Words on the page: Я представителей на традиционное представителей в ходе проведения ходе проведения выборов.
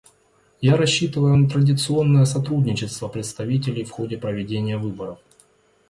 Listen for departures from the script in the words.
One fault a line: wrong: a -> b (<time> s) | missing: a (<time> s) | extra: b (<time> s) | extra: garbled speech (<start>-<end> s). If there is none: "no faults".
wrong: представителей -> рассчитываю (0.8 s)
extra: сотрудничество (2.2 s)
missing: ходе проведения (4.8 s)